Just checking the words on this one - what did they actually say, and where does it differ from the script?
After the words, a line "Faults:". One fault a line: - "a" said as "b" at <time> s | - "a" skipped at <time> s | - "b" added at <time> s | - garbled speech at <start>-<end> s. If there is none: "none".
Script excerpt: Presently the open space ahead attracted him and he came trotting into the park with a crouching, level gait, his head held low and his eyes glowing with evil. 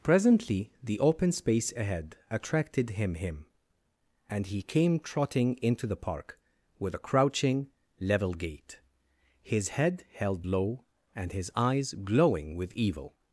Presently the open space ahead attracted him him and he came trotting into the park with a crouching, level gait, his head held low and his eyes glowing with evil.
Faults:
- "him" added at 3.1 s